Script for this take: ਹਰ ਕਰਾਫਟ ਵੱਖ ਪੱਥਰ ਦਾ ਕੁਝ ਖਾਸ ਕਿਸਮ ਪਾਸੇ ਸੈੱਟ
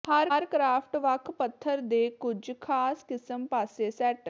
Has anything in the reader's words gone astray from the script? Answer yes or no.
yes